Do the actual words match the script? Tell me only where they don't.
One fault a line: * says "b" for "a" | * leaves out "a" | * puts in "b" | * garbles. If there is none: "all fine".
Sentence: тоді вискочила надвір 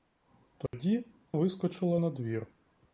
all fine